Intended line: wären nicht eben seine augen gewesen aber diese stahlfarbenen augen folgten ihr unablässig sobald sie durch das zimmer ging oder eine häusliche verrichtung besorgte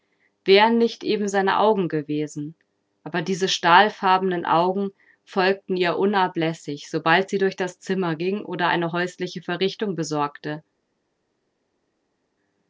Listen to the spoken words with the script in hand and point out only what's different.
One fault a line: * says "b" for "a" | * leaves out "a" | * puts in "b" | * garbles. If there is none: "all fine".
all fine